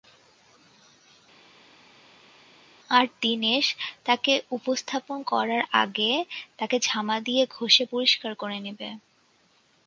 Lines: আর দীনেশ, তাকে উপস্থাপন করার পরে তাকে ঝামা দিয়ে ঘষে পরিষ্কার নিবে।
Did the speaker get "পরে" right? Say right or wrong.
wrong